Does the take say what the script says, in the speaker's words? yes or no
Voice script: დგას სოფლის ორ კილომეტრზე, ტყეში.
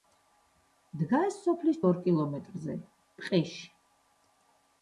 yes